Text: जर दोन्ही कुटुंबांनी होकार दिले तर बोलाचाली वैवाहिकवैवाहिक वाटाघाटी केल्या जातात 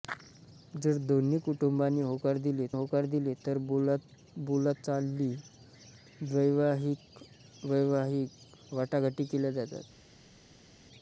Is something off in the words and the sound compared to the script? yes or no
yes